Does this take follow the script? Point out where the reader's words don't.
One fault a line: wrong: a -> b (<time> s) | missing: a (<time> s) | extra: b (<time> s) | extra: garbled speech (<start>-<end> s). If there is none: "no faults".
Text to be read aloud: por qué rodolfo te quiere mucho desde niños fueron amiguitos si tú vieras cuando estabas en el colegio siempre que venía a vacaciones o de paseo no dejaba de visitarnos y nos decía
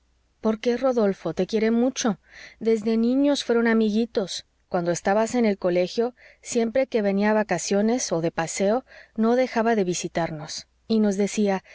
missing: si tú vieras (4.5 s)